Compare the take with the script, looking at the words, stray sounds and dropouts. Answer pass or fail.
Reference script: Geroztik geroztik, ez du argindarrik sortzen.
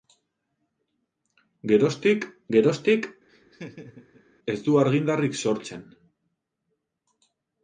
fail